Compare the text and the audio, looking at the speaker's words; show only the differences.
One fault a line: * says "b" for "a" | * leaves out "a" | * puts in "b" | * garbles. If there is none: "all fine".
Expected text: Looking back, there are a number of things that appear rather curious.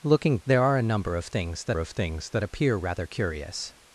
* leaves out "back"
* puts in "of things that"